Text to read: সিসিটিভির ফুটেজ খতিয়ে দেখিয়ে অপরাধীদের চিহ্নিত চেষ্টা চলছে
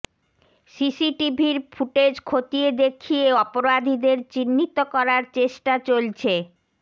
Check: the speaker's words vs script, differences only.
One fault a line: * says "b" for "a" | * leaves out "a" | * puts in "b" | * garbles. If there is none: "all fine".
* puts in "করার"